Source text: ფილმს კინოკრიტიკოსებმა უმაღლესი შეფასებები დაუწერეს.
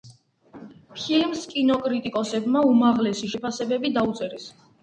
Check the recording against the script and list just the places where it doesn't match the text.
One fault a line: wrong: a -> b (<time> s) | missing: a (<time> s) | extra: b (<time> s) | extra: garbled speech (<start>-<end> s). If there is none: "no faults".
no faults